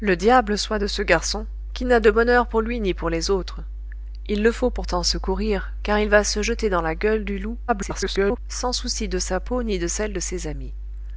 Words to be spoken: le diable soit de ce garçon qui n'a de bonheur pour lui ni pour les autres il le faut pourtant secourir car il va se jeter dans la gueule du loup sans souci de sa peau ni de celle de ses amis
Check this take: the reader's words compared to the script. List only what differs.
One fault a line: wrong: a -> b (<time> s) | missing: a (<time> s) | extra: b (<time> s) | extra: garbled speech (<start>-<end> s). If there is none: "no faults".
extra: garbled speech (7.7-8.4 s)